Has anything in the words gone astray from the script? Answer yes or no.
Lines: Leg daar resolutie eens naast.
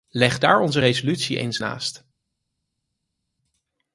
yes